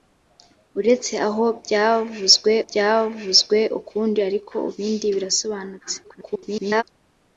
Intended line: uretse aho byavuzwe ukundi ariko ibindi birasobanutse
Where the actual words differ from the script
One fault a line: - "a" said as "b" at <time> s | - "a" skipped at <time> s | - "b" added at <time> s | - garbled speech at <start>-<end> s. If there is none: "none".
- "byavuzwe" added at 2.7 s
- garbled speech at 6.0-6.8 s